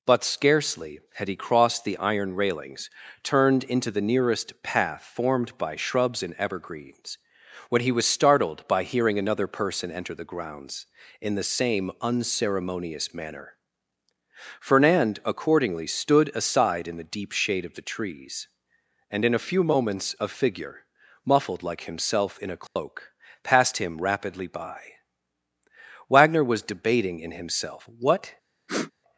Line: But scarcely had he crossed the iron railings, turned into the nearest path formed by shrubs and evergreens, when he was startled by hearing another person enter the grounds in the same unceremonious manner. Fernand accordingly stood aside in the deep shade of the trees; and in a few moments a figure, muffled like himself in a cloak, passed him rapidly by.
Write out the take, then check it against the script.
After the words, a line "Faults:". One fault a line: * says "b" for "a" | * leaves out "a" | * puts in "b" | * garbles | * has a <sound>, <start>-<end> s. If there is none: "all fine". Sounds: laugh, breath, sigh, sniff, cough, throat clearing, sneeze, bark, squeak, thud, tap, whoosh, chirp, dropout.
But scarcely had he crossed the iron railings, turned into the nearest path formed by shrubs and evergreens, when he was startled by hearing another person enter the grounds in the same unceremonious manner. Fernand accordingly stood aside in the deep shade of the trees; and in a few moments a figure, muffled like himself in a cloak, passed him rapidly by. Wagner was debating in himself what
Faults:
* has a dropout, 22.7-22.8 s
* puts in "Wagner was debating in himself what"
* has a sniff, 28.7-28.9 s